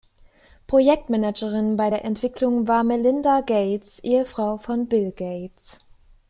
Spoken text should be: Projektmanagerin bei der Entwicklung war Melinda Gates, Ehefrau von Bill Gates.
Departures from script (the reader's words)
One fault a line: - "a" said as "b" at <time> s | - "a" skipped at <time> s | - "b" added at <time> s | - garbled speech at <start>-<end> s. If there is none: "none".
none